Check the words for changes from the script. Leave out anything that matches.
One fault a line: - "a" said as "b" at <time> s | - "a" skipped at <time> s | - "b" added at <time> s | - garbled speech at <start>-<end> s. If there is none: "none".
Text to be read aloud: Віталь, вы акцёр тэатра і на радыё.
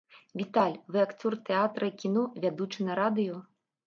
- "кіно вядучы" added at 2.0 s